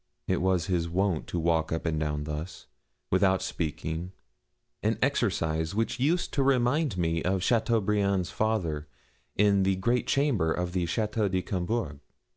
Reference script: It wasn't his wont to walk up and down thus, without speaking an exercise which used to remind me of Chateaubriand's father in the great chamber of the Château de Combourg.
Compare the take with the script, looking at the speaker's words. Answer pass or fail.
fail